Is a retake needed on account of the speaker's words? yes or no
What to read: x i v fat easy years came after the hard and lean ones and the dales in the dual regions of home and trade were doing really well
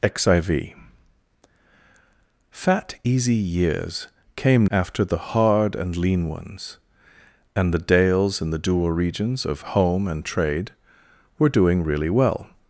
no